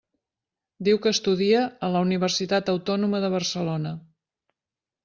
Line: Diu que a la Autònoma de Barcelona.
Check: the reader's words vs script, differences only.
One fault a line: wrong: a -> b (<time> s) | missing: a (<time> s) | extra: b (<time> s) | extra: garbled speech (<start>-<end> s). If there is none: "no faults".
extra: estudia (1.2 s)
extra: Universitat (2.1 s)